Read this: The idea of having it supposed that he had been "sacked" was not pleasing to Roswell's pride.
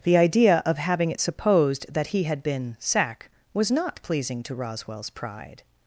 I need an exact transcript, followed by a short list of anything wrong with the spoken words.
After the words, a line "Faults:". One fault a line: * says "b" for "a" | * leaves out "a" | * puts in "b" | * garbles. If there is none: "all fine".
The idea of having it supposed that he had been "sack" was not pleasing to Roswell's pride.
Faults:
* says "sack" for "sacked"